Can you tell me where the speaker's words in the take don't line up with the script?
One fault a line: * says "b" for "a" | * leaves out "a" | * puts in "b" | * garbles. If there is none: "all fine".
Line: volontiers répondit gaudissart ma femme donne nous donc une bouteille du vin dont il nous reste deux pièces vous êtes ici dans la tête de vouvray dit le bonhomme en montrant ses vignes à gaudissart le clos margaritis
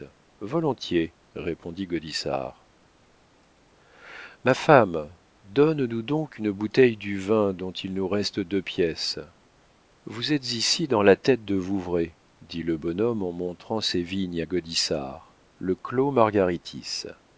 all fine